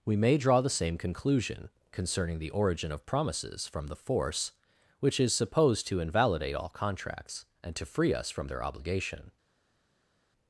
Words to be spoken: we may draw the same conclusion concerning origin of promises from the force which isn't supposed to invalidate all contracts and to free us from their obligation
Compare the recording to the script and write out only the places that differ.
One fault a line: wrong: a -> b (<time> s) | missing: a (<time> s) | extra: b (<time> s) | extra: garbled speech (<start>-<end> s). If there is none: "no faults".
extra: the (2.4 s)
wrong: isn't -> is (5.2 s)